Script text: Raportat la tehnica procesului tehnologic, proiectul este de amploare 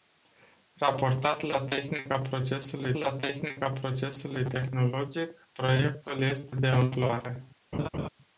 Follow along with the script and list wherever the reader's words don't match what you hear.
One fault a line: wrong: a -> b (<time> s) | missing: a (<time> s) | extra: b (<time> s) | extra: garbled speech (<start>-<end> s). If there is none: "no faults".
extra: la tehnica procesului (2.9 s)